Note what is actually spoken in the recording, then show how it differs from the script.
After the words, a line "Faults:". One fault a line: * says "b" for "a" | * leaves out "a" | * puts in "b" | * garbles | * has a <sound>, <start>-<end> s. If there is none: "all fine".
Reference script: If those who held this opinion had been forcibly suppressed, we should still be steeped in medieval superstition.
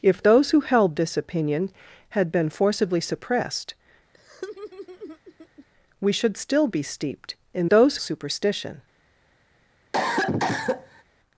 If those who held this opinion had been forcibly suppressed, we should still be steeped in those superstition.
Faults:
* has a laugh, 4.1-5.7 s
* says "those" for "medieval"
* has a cough, 9.9-11.0 s